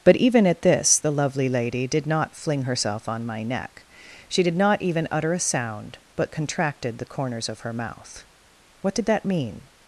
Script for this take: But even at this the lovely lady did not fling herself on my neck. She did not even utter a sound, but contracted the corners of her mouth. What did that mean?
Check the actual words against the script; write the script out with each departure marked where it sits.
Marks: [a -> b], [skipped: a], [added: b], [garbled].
But even at this the lovely lady did not fling herself on my neck. She did not even utter a sound, but contracted the corners of her mouth. What did that mean?